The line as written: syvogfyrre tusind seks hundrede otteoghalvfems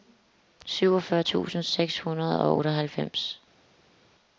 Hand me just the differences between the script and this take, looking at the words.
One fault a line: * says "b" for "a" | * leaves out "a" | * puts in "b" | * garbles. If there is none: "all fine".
* puts in "og"